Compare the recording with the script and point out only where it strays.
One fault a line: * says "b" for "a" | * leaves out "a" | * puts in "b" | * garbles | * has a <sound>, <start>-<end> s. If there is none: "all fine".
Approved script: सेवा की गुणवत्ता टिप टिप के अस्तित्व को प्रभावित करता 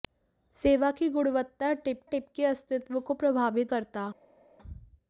all fine